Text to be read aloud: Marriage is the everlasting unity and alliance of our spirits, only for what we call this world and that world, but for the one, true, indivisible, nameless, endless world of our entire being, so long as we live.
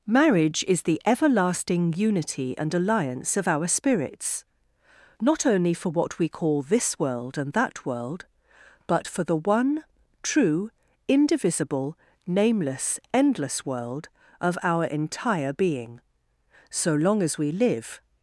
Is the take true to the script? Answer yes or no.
no